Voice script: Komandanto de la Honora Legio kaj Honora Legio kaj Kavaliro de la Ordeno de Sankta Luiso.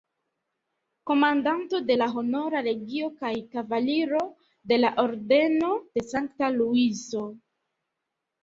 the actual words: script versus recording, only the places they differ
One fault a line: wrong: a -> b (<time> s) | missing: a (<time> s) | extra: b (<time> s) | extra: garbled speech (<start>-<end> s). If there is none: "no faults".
missing: Honora Legio kaj (3.3 s)